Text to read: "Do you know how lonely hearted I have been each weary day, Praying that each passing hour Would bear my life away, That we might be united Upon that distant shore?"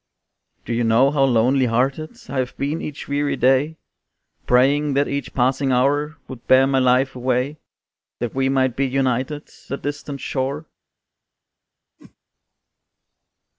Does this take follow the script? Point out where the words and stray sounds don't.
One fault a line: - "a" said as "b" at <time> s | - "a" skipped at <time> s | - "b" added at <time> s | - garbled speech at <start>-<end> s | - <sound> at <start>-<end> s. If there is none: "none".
- "Upon" skipped at 9.5 s
- whoosh at 12.0-12.2 s